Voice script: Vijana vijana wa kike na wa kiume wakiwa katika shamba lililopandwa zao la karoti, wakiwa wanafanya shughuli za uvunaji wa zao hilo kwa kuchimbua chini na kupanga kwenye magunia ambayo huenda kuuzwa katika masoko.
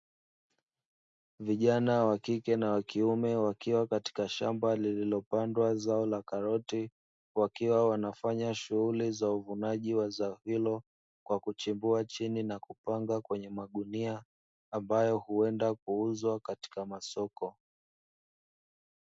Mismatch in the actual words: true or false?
true